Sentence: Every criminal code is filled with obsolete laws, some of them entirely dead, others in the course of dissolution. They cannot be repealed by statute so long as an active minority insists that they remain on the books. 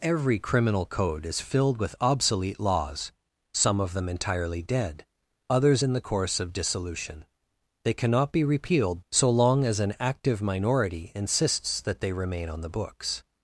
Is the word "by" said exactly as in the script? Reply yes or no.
no